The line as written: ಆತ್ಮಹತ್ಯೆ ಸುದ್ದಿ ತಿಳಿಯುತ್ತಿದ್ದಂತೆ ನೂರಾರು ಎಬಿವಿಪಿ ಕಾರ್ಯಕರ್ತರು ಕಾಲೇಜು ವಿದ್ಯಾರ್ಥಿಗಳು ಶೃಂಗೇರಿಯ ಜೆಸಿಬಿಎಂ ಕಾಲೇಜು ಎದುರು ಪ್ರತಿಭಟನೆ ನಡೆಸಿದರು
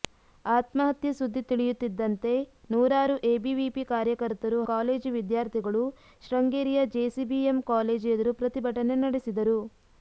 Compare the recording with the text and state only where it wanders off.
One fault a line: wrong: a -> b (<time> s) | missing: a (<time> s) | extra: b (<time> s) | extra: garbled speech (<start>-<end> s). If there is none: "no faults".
no faults